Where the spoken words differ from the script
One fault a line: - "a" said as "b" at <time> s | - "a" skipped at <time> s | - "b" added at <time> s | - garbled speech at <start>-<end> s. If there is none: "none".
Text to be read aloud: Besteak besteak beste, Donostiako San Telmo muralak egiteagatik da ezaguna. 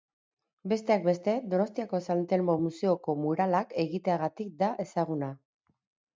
- "besteak" skipped at 1.0 s
- "museoko" added at 2.7 s